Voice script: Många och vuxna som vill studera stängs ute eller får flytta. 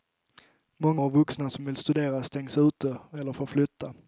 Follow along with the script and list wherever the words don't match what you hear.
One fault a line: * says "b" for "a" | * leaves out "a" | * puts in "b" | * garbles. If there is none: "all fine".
all fine